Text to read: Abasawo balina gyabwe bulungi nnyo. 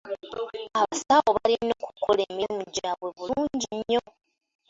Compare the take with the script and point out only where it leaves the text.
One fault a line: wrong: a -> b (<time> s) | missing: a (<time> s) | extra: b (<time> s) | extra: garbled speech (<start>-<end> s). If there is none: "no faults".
extra: okukola emirimu (1.9 s)